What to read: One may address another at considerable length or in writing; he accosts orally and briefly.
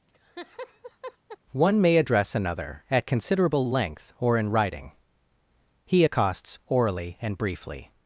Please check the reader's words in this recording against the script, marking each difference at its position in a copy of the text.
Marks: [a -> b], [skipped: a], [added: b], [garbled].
One may address another at considerable length or in writing; he accosts orally and briefly.